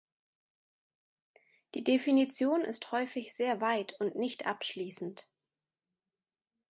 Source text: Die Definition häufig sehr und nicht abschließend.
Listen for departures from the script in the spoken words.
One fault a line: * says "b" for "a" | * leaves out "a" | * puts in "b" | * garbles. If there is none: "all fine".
* puts in "ist"
* puts in "weit"